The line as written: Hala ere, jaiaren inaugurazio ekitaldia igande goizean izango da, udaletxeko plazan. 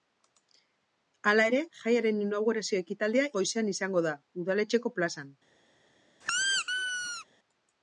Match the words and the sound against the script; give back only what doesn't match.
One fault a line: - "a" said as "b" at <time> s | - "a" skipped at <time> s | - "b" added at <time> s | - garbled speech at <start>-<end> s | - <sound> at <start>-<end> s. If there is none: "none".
- "igande" skipped at 3.3 s
- squeak at 6.2-7.3 s